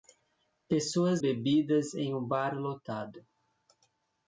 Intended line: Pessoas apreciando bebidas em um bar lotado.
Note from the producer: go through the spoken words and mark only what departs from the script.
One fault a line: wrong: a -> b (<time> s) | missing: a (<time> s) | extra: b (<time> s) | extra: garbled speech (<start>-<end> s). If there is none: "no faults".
missing: apreciando (1.2 s)